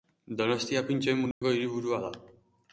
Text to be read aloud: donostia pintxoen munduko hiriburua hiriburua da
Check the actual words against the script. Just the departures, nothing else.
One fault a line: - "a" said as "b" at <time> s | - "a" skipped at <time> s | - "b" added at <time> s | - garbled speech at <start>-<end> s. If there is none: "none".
- "hiriburua" skipped at 2.0 s